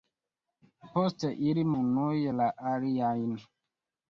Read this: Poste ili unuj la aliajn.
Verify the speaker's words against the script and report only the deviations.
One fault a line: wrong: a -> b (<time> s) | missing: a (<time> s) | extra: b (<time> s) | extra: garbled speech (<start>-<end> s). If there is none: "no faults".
no faults